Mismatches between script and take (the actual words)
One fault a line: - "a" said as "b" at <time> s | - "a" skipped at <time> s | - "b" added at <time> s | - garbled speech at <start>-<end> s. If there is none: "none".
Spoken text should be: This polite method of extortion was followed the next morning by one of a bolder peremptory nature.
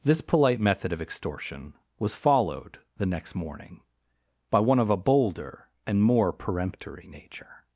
- "and more" added at 5.8 s